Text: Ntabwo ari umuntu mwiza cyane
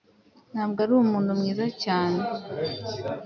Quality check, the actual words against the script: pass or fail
pass